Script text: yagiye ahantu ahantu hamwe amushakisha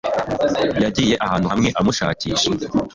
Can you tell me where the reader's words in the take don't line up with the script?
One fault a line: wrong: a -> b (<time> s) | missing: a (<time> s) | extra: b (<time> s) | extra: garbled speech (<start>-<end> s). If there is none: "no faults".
missing: ahantu (1.5 s)